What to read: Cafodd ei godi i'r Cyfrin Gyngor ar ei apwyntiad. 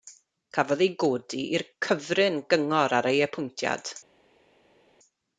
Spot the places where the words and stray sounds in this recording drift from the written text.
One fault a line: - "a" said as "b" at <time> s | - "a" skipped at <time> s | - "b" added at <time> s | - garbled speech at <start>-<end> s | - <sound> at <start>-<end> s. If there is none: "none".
none